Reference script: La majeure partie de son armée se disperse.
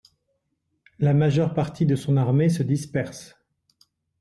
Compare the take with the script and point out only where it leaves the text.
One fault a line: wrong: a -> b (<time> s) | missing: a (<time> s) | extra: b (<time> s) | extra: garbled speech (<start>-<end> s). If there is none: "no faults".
no faults